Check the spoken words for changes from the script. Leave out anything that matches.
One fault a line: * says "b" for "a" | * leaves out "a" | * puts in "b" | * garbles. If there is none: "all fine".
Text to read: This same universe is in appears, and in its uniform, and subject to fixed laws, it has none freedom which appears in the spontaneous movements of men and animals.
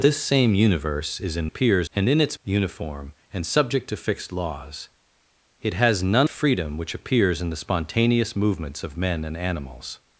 all fine